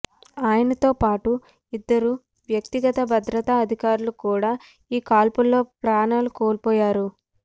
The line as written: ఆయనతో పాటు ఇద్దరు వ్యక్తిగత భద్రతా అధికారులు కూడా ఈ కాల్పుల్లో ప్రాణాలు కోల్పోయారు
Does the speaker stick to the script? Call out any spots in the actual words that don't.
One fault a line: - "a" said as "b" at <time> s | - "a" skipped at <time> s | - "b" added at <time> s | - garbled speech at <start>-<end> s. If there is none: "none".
none